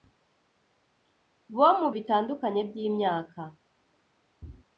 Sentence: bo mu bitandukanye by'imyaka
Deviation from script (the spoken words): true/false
false